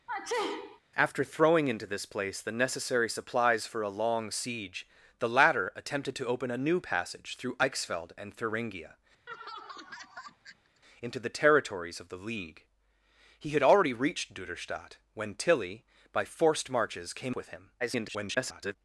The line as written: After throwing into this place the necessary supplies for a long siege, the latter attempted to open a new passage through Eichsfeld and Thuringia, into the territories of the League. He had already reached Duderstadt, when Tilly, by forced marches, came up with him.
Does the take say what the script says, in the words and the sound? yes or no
no